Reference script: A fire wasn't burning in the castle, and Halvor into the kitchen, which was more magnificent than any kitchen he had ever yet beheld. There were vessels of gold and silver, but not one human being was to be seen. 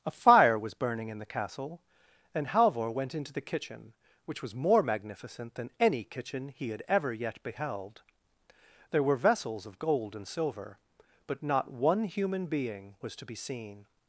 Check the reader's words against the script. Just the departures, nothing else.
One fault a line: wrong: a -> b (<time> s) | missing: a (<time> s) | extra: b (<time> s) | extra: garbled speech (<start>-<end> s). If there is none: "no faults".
wrong: wasn't -> was (0.6 s)
extra: went (2.9 s)